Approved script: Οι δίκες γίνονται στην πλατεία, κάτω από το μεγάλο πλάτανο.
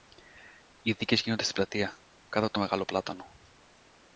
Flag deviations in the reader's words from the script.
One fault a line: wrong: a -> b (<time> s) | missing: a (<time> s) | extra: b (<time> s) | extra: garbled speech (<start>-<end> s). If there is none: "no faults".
no faults